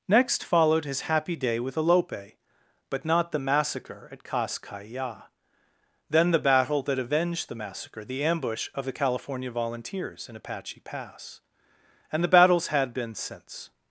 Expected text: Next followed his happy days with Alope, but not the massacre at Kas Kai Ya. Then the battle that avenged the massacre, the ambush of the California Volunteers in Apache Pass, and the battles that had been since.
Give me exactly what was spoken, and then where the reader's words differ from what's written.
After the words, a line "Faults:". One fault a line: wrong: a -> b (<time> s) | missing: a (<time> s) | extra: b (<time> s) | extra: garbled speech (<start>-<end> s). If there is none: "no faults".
Next followed his happy day with Alope, but not the massacre at Kas Kai Ya. Then the battle that avenged the massacre, the ambush of the California Volunteers in Apache Pass, and the battles had been since.
Faults:
wrong: days -> day (1.4 s)
missing: that (12.7 s)